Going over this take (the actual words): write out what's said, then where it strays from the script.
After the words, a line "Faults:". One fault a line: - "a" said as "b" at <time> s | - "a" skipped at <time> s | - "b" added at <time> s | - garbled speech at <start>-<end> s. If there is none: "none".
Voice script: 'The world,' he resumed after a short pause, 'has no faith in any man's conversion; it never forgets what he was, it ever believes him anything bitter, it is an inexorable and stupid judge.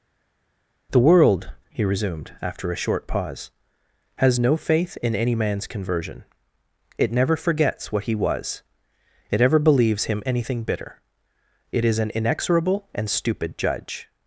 'The world,' he resumed after a short pause, 'has no faith in any man's conversion; it never forgets what he was, it ever believes him anything bitter, it is an inexorable and stupid judge.
Faults:
none